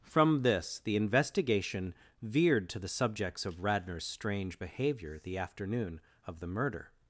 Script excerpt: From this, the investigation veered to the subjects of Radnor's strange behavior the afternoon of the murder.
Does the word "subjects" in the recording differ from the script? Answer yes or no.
no